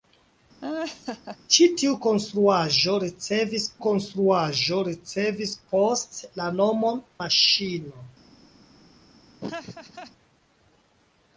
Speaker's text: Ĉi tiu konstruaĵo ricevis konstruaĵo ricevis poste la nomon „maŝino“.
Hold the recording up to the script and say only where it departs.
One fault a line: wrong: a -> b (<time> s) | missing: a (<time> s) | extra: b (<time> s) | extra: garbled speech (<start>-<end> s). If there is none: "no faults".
no faults